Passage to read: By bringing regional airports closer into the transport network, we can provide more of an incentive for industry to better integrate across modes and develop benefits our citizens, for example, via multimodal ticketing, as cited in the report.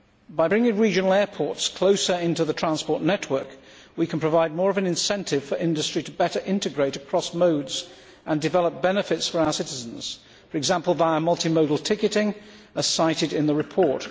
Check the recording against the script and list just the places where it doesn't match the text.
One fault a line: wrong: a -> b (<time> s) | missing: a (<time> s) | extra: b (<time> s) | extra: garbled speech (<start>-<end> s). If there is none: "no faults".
extra: for (9.3 s)